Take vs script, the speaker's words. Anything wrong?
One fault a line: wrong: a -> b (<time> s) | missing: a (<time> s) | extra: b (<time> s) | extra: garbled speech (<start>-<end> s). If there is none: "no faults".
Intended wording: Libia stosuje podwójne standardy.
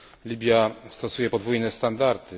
no faults